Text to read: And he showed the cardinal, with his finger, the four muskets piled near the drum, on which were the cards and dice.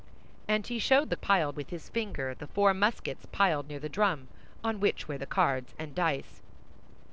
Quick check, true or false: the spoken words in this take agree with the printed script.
false